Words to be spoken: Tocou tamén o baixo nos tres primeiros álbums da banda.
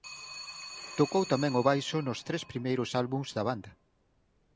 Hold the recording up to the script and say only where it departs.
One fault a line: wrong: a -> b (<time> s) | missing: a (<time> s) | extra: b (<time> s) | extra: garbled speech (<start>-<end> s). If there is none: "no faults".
no faults